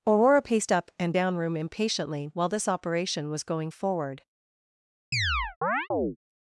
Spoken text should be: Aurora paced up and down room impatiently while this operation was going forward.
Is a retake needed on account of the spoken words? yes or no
no